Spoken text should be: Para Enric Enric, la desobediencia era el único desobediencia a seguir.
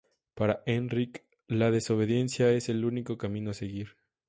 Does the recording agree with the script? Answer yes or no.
no